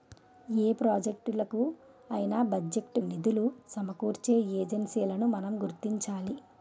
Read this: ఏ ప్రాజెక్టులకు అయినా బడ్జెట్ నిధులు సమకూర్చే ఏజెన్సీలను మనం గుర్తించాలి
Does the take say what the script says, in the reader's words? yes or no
yes